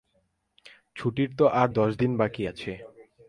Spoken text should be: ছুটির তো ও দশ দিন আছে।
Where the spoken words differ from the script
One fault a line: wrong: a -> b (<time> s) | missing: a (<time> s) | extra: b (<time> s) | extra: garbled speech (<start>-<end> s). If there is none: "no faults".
wrong: ও -> আর (1.5 s)
extra: বাকি (2.2 s)